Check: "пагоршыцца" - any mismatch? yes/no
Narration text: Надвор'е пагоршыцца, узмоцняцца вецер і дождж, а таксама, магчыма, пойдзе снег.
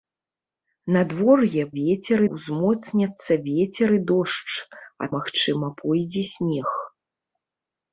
yes